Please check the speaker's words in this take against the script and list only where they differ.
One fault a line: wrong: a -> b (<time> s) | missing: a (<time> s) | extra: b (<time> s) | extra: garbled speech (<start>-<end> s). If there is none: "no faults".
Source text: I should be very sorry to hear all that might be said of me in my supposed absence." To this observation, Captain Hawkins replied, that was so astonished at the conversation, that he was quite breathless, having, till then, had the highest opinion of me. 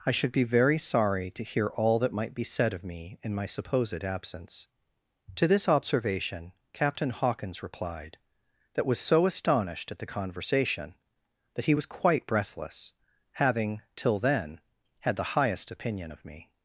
no faults